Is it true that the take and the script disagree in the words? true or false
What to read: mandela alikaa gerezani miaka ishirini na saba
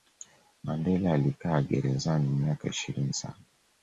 true